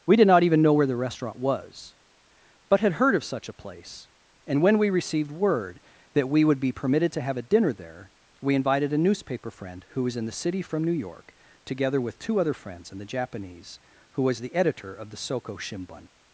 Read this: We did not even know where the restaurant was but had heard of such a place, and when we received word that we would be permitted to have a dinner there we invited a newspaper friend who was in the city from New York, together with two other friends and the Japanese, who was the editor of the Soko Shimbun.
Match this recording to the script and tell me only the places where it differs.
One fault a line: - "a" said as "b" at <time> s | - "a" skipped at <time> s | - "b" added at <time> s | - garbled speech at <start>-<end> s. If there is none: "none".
none